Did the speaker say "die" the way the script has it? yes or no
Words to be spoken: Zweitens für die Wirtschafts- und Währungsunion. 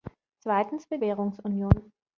no